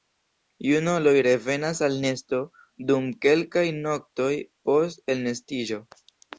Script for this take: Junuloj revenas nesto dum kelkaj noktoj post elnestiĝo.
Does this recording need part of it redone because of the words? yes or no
yes